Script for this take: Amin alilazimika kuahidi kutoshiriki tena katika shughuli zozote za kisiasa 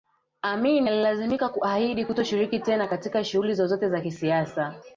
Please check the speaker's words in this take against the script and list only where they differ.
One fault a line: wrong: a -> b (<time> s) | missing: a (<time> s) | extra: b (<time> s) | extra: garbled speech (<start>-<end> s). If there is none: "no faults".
no faults